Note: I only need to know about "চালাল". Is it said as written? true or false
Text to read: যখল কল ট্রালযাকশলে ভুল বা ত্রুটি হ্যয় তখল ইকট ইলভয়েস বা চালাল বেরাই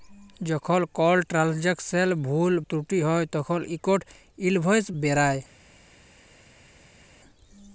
false